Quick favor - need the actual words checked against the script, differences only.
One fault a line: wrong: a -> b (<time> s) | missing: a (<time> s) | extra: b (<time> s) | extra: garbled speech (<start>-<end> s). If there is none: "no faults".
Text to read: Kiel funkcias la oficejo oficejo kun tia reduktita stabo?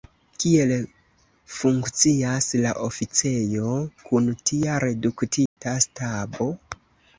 missing: oficejo (3.8 s)